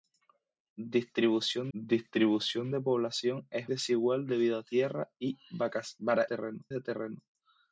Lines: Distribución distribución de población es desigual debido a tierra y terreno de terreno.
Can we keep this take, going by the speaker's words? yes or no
yes